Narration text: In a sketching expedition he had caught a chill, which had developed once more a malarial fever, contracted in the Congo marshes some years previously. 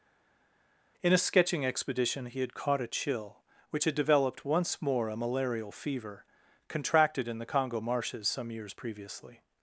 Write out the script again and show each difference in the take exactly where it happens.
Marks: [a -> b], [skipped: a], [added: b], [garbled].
In a sketching expedition he had caught a chill, which had developed once more a malarial fever, contracted in the Congo marshes some years previously.